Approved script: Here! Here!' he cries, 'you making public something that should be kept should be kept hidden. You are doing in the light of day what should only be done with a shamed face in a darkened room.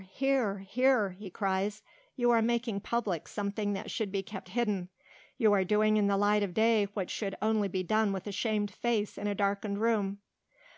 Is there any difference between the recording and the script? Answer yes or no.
yes